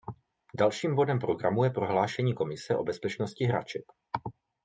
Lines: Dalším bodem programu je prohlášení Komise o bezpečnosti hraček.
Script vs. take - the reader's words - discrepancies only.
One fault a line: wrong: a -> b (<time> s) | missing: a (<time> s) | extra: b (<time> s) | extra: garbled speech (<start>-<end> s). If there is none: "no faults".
no faults